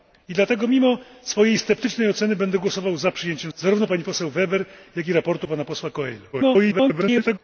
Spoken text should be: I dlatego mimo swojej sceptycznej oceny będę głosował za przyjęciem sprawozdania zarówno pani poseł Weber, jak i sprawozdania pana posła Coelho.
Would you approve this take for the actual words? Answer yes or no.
no